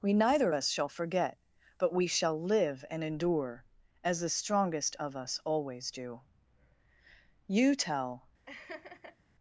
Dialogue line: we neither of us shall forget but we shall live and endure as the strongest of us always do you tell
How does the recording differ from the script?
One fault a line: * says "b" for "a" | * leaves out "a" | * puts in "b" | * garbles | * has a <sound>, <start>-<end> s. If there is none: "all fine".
* has a laugh, 8.5-9.2 s